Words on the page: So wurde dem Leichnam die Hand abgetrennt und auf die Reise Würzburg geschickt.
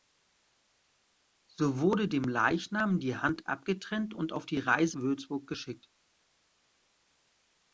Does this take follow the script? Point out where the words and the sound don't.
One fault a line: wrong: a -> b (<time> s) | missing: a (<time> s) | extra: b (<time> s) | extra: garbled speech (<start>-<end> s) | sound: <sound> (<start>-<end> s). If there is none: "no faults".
no faults